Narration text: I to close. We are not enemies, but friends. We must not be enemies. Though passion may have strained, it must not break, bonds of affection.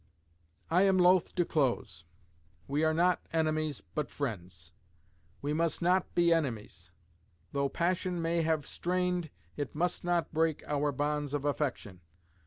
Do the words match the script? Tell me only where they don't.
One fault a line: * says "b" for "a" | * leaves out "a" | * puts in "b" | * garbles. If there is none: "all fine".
* puts in "am loth"
* puts in "our"